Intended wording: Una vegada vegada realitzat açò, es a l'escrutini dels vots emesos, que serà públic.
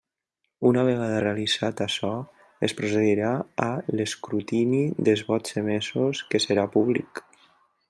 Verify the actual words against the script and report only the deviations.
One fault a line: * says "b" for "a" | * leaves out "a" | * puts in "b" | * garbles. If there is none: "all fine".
* leaves out "vegada"
* puts in "procedirà"